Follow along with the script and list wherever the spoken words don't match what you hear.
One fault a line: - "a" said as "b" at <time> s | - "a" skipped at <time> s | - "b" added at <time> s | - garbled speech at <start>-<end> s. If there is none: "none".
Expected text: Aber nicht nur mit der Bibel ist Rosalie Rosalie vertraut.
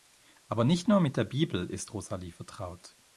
- "Rosalie" skipped at 2.3 s